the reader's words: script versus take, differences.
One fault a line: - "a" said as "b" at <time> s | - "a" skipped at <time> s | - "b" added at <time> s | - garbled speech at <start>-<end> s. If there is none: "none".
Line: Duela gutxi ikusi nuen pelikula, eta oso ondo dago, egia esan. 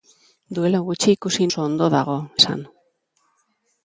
- "nuen pelikula eta" skipped at 1.4 s
- "egia" skipped at 2.2 s